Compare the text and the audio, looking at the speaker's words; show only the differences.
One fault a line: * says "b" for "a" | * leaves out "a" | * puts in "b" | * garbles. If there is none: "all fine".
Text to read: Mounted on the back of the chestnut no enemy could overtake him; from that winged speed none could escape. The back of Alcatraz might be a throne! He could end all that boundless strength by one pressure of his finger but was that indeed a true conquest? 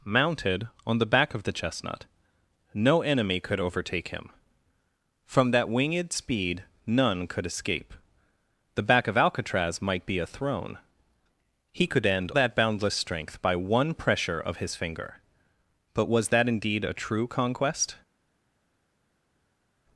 * leaves out "all"